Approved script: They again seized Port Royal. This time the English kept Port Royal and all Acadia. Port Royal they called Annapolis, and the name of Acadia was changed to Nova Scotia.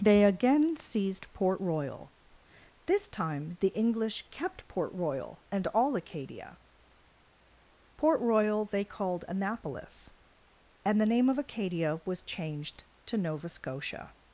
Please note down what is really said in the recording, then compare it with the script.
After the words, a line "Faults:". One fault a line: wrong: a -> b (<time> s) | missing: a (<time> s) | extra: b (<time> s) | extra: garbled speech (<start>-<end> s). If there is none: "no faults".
They again seized Port Royal. This time the English kept Port Royal and all Acadia. Port Royal they called Annapolis, and the name of Acadia was changed to Nova Scotia.
Faults:
no faults